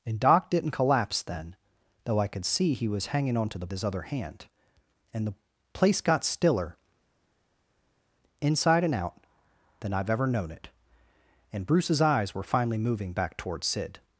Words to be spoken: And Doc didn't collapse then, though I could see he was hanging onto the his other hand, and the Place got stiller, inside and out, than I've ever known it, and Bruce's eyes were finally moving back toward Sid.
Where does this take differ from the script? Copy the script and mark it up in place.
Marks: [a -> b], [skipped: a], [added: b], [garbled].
And Doc didn't collapse then, though I could see he was hanging onto the his other hand, and the Place got stiller, inside and out, than I've ever known it, and Bruce's eyes were finally moving back toward Sid.